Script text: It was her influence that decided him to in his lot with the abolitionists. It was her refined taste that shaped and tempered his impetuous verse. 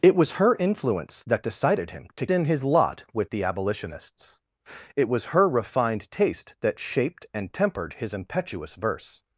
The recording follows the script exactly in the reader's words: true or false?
true